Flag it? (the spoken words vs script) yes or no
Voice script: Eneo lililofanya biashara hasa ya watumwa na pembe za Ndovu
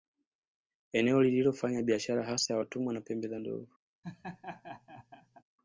no